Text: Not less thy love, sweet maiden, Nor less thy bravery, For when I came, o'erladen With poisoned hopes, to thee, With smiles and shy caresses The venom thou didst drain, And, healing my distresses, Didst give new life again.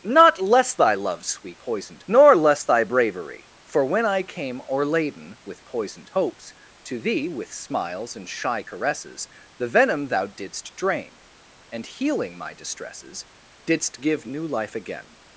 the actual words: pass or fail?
fail